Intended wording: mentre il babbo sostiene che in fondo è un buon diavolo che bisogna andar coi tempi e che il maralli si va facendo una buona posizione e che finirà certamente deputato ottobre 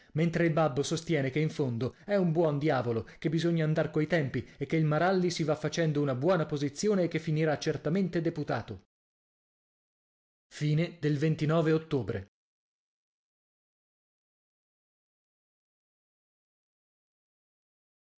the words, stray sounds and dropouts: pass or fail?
pass